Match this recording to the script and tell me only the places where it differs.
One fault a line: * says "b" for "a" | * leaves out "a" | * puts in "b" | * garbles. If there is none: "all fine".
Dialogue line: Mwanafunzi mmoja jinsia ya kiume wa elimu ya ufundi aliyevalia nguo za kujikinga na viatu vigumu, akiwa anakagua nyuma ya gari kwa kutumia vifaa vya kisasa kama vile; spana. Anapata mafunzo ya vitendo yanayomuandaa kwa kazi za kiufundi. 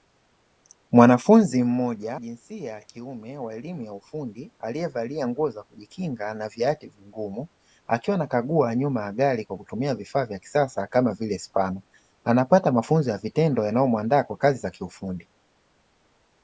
all fine